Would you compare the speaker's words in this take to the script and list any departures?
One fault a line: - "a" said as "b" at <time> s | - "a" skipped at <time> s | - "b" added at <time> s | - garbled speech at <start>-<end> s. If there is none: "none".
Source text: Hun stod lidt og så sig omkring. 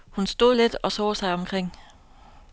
none